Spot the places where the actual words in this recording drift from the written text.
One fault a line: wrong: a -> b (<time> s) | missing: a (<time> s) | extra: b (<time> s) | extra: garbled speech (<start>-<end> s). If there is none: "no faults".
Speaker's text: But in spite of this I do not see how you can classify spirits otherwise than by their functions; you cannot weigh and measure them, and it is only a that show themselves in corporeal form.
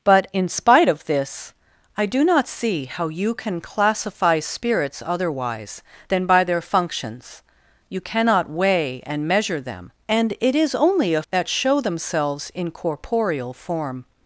no faults